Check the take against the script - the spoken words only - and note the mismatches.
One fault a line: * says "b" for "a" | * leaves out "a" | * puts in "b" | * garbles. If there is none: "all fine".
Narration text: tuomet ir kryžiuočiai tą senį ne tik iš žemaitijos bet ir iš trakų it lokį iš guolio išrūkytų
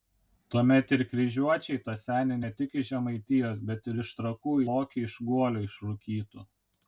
* leaves out "it"